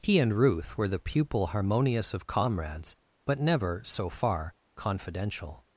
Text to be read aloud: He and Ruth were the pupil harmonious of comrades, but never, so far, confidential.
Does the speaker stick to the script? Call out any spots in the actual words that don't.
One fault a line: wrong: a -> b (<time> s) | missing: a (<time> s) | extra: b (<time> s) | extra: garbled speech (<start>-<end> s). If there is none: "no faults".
no faults